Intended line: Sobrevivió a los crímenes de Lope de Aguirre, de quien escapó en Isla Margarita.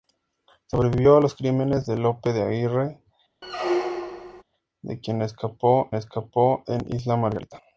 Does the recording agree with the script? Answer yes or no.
no